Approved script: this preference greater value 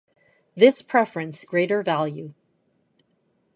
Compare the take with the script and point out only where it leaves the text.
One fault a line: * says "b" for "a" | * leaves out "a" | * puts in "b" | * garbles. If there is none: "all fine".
all fine